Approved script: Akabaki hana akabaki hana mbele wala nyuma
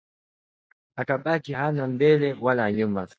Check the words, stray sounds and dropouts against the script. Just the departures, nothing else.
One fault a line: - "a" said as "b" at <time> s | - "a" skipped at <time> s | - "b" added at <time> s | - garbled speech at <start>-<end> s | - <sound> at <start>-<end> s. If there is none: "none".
- "akabaki hana" skipped at 1.9 s